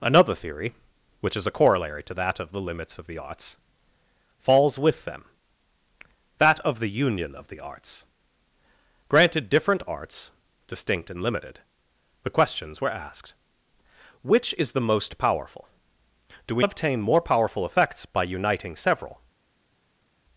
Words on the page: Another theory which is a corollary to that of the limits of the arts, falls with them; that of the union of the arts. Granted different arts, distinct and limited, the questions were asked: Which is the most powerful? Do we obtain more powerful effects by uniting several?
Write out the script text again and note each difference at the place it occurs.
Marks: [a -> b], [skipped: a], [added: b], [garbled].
Another theory which is a corollary to that of the limits of the arts, falls with them; that of the union of the arts. Granted different arts, distinct and limited, the questions were asked: Which is the most powerful? Do we obtain more powerful effects by uniting several?